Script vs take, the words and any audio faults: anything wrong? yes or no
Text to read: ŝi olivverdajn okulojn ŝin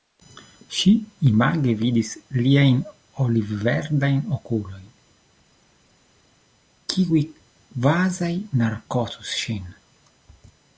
yes